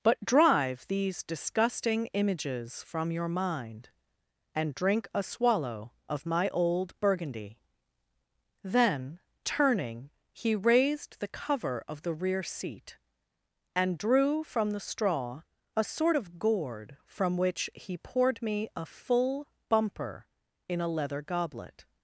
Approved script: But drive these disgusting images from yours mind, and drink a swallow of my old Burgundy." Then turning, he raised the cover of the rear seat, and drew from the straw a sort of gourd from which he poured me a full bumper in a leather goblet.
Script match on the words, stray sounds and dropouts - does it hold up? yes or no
no